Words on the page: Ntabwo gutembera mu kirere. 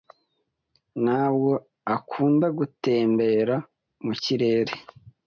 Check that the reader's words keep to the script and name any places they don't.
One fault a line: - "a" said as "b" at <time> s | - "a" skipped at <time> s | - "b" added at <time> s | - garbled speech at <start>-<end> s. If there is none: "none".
- "akunda" added at 1.9 s